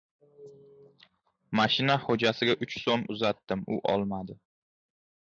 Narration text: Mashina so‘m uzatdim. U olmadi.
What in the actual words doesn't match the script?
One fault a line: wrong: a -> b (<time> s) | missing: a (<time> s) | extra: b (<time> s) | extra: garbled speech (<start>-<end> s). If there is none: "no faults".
extra: xo‘jasiga uch (2.0 s)